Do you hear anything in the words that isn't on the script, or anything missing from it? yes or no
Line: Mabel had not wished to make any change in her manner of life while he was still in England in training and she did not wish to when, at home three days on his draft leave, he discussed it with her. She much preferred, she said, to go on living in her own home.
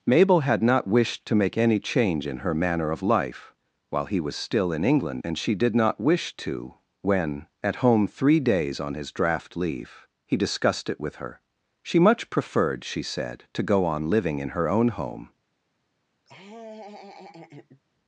yes